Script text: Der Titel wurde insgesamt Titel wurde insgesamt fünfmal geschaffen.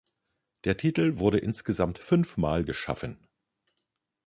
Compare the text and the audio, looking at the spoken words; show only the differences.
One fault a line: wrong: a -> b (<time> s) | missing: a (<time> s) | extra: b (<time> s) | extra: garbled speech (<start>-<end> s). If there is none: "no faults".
missing: Titel wurde insgesamt (2.0 s)